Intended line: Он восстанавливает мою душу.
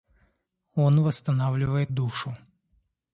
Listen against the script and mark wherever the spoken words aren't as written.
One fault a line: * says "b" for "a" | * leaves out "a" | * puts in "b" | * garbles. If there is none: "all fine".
* leaves out "мою"